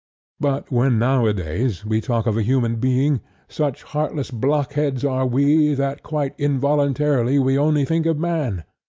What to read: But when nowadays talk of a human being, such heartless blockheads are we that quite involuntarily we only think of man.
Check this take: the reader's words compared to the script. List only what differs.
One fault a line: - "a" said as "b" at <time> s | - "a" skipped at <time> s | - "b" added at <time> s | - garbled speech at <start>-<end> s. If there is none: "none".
- "we" added at 1.9 s